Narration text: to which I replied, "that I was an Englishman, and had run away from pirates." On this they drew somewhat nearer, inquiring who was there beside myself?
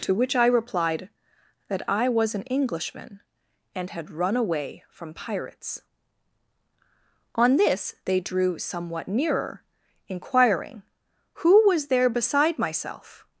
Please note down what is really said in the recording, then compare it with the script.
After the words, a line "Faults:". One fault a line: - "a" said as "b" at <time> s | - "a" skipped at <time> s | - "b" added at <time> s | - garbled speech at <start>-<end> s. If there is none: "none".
to which I replied, "that I was an Englishman, and had run away from pirates." On this they drew somewhat nearer, inquiring who was there beside myself?
Faults:
none